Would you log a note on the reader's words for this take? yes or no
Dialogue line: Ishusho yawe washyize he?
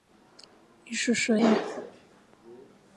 yes